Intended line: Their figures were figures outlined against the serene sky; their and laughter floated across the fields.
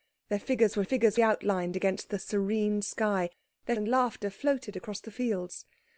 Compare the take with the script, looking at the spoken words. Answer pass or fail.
pass